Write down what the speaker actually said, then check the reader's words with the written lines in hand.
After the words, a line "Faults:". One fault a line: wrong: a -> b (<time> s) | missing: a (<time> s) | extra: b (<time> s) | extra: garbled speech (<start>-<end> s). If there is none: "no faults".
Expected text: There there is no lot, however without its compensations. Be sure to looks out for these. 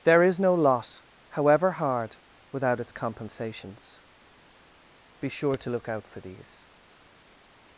There is no lot, however hard, without its compensations. Be sure to look out for these.
Faults:
missing: there (0.2 s)
extra: hard (1.7 s)
wrong: looks -> look (5.7 s)